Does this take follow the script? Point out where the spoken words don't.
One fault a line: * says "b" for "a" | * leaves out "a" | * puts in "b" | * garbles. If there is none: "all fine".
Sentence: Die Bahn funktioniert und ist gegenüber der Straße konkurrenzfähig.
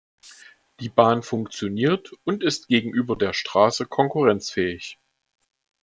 all fine